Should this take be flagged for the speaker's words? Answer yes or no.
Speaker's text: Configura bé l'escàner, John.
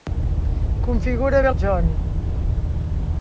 yes